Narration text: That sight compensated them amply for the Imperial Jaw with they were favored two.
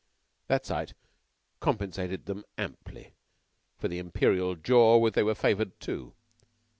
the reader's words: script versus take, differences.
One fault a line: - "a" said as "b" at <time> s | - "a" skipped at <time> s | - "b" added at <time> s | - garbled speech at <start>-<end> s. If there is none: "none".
none